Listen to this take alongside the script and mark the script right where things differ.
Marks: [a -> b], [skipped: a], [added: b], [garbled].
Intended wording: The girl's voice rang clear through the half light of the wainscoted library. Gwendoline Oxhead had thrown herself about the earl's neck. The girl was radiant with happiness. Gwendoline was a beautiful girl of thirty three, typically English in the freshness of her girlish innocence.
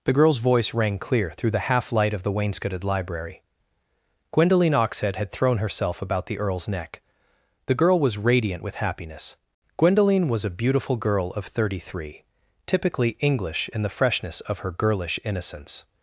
The girl's voice rang clear through the half light of the wainscoted library. Gwendoline Oxhead had thrown herself about the earl's neck. The girl was radiant with happiness. Gwendoline was a beautiful girl of thirty three, typically English in the freshness of her girlish innocence.